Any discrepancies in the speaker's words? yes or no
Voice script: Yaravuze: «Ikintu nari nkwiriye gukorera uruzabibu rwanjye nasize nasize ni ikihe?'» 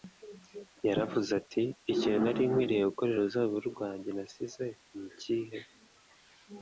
yes